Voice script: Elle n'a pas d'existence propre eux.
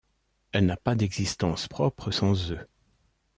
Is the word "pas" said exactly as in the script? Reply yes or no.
yes